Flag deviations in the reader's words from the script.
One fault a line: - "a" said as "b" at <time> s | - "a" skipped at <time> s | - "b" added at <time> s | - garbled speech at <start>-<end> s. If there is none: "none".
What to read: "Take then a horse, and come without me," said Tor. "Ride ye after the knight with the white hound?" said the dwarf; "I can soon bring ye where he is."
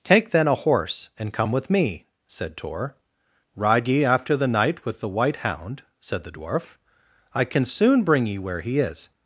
- "without" said as "with" at 1.5 s